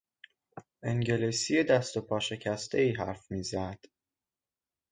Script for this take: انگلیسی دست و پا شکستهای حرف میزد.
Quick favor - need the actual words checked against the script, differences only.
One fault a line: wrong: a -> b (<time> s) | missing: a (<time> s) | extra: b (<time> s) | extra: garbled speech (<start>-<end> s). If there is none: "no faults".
no faults